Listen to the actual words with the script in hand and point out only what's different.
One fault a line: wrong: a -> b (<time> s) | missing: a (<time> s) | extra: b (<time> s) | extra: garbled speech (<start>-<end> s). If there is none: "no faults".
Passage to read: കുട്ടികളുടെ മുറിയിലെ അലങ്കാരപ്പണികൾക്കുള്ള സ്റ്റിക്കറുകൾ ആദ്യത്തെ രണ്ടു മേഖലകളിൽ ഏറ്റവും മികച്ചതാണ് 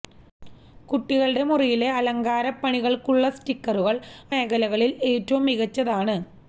missing: ആദ്യത്തെ രണ്ടു (4.0 s)